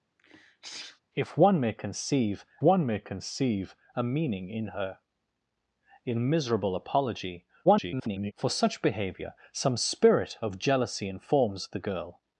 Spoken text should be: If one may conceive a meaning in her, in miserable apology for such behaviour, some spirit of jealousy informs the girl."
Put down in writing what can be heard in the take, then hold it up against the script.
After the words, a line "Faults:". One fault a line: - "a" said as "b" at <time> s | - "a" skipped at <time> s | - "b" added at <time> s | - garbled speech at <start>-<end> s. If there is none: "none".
If one may conceive one may conceive a meaning in her, in miserable apology [garbled] for such behaviour, some spirit of jealousy informs the girl."
Faults:
- "one may conceive" added at 2.6 s
- garbled speech at 7.6-8.3 s